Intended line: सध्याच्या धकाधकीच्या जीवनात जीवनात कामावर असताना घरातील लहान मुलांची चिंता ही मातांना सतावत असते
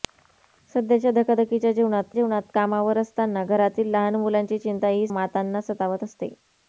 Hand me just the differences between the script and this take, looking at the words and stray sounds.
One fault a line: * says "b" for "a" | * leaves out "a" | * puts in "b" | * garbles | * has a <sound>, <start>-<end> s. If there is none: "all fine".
all fine